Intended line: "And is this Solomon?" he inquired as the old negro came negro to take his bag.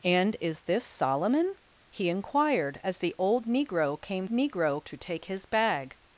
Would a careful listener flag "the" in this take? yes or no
no